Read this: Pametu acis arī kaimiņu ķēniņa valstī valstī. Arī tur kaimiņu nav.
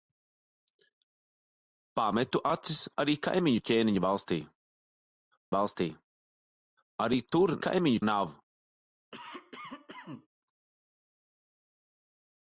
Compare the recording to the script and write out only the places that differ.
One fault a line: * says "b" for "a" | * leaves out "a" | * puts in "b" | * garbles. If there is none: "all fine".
all fine